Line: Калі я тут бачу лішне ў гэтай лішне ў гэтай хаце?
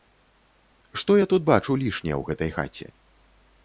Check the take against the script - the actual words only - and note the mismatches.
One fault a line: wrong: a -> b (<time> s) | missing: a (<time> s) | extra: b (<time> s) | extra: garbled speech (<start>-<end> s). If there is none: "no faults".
wrong: Калі -> Што (1.0 s)
missing: лішне ў гэтай (2.5 s)